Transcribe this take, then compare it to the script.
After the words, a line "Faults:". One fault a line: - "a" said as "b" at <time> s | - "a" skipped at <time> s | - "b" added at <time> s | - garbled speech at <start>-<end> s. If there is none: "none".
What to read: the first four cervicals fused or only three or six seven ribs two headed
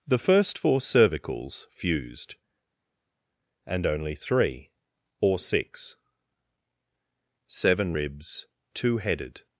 the first four cervicals fused and only three or six seven ribs two headed
Faults:
- "or" said as "and" at 3.7 s